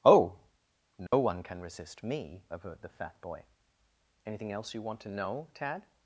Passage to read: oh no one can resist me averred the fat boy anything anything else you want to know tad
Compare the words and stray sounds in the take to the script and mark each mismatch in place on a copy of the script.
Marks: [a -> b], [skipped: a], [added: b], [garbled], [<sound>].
oh no [dropout] one can resist me averred the fat boy anything [skipped: anything] else you want to know tad